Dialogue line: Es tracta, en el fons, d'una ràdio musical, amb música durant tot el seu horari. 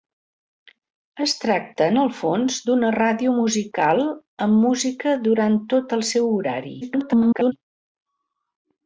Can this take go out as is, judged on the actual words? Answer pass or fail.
fail